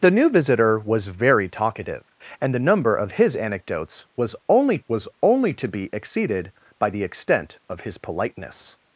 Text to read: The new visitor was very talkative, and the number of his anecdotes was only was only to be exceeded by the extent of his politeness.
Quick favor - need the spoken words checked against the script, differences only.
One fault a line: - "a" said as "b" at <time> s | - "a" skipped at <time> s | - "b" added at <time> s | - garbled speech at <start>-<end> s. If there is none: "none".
none